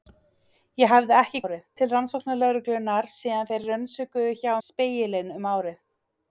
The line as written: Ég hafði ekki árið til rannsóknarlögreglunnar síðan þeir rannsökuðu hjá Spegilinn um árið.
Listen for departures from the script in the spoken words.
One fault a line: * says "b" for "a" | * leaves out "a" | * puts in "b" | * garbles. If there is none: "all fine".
all fine